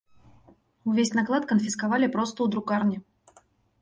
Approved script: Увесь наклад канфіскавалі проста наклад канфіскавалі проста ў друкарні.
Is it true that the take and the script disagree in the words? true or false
true